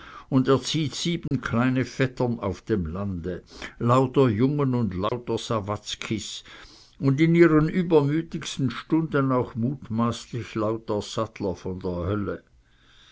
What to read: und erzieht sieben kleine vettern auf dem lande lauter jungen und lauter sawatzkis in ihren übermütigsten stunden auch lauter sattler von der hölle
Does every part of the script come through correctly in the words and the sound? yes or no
no